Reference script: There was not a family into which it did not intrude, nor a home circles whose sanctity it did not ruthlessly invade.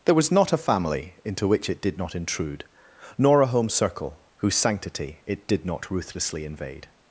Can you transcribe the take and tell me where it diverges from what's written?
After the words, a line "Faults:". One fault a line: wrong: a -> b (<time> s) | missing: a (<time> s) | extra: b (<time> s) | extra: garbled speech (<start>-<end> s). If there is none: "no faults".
There was not a family into which it did not intrude, nor a home circle whose sanctity it did not ruthlessly invade.
Faults:
wrong: circles -> circle (3.7 s)